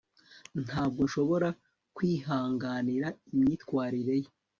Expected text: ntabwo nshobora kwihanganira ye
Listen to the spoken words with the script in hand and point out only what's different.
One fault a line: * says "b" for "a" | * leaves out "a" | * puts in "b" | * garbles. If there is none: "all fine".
* puts in "imyitwarire"